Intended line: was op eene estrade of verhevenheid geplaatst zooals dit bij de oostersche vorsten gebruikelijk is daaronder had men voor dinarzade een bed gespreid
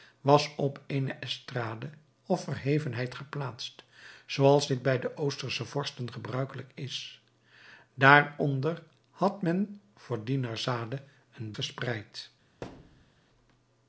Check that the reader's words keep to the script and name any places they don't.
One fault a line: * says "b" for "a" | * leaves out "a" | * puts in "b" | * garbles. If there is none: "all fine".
* leaves out "bed"